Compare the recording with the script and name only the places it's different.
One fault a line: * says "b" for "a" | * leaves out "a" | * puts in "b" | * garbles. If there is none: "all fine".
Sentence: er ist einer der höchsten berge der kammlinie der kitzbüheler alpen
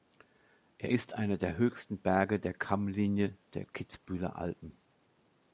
all fine